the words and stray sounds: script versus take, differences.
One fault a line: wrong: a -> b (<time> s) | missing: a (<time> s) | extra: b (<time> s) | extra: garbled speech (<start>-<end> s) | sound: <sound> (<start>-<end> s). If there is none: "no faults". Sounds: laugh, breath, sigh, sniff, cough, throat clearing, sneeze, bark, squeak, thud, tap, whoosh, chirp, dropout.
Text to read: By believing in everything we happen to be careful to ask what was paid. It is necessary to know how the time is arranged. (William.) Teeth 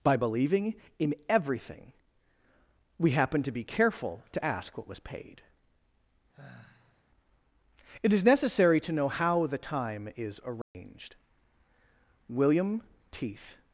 sound: sigh (6.3-7.0 s)
sound: dropout (10.6-10.7 s)